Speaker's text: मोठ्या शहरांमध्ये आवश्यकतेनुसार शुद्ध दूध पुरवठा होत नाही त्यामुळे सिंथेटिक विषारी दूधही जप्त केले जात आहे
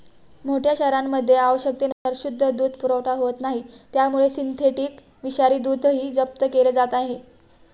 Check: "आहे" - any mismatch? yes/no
no